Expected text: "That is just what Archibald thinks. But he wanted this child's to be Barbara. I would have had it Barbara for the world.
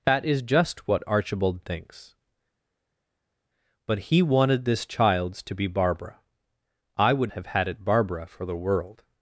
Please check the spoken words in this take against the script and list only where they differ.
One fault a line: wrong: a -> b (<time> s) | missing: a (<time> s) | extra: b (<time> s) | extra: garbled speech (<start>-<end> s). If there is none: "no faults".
no faults